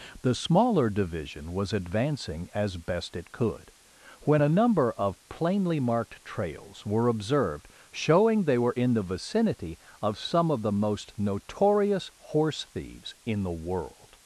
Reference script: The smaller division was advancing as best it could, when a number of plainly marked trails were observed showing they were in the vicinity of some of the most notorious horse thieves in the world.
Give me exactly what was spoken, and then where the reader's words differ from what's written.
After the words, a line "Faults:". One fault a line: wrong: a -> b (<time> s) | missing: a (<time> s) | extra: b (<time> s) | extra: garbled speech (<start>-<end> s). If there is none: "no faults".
The smaller division was advancing as best it could, when a number of plainly marked trails were observed showing they were in the vicinity of some of the most notorious horse thieves in the world.
Faults:
no faults